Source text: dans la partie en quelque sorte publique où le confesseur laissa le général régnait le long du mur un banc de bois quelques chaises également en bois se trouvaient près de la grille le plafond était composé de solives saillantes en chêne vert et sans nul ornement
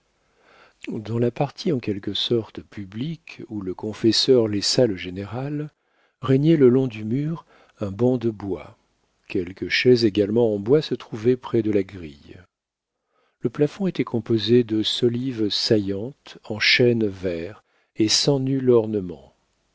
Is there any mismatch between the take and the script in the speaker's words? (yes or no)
no